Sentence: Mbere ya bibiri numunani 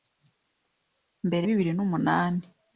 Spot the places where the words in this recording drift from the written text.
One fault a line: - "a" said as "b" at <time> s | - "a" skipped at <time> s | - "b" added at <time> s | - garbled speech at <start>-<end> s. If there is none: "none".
- "ya" skipped at 1.4 s